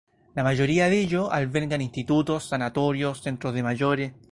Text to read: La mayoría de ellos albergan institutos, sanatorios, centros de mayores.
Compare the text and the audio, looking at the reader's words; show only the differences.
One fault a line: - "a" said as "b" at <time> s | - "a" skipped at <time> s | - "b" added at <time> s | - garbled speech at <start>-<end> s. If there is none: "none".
none